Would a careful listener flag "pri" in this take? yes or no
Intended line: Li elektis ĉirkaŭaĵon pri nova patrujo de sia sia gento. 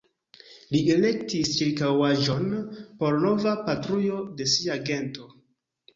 yes